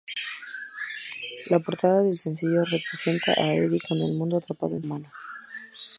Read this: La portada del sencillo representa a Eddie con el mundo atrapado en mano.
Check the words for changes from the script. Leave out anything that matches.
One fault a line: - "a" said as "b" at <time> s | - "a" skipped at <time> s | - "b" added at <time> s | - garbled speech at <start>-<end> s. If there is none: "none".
none